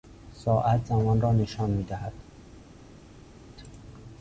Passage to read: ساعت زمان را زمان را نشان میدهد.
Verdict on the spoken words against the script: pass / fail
fail